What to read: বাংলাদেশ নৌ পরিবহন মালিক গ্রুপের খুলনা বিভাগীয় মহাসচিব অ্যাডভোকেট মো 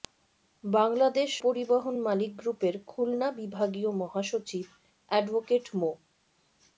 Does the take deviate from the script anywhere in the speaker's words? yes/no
yes